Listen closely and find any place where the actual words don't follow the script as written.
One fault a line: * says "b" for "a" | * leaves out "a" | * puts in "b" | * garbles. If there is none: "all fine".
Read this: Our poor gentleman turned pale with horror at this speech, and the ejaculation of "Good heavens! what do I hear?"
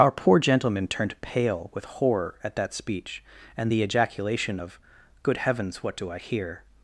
* says "that" for "this"